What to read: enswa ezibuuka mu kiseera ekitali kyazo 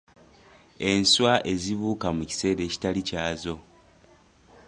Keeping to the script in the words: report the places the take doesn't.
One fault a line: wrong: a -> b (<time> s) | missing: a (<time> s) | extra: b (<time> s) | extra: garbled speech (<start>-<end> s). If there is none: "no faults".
no faults